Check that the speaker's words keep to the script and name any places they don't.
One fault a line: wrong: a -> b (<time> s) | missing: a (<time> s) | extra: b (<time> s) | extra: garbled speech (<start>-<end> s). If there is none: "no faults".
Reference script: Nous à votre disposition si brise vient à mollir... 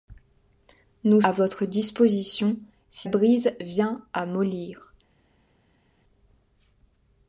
no faults